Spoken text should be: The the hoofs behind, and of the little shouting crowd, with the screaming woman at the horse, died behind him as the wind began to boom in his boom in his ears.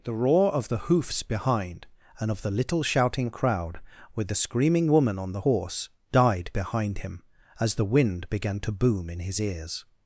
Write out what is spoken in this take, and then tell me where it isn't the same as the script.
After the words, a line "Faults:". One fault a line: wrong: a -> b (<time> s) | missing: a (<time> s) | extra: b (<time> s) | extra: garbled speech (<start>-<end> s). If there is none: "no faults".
The roar of the hoofs behind, and of the little shouting crowd, with the screaming woman on the horse, died behind him as the wind began to boom in his ears.
Faults:
extra: roar of (0.1 s)
wrong: at -> on (5.2 s)
missing: boom in his (9.4 s)